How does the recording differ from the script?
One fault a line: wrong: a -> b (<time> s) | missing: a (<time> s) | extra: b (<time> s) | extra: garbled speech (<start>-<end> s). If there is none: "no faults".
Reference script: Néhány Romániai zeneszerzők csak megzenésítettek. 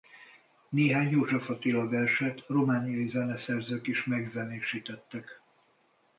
extra: József Attila verset (1.1 s)
wrong: csak -> is (3.9 s)